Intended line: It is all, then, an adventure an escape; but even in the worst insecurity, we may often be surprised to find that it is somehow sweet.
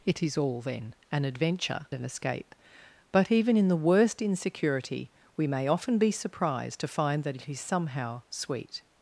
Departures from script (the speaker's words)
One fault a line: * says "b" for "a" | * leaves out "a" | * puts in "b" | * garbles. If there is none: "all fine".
all fine